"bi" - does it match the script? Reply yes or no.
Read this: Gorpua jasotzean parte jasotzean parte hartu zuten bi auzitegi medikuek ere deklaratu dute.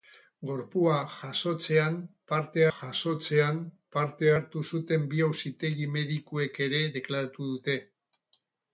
yes